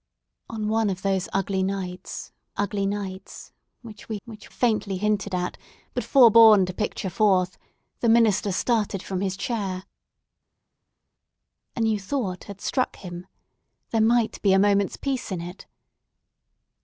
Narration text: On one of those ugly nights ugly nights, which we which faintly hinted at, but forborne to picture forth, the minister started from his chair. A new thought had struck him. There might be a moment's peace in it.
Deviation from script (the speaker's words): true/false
false